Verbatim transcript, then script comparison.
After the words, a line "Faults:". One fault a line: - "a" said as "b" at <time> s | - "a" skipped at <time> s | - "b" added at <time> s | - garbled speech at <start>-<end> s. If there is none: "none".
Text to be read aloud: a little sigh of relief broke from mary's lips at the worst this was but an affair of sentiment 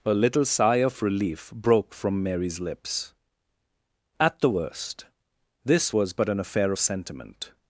a little sigh of relief broke from mary's lips at the worst this was but an affair of sentiment
Faults:
none